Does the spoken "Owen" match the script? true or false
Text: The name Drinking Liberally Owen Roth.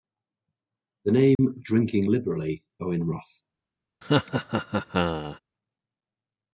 true